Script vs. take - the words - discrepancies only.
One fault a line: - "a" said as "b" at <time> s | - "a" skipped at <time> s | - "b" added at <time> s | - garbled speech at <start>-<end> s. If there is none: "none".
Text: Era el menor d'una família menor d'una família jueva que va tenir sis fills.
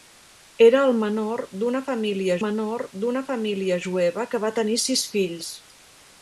none